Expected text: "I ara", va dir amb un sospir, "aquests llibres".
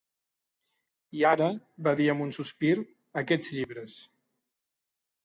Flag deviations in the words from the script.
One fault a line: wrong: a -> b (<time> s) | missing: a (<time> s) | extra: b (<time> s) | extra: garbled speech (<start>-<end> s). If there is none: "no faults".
no faults